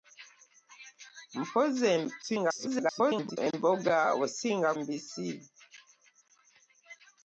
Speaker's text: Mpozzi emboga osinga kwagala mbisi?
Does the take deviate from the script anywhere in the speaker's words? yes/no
yes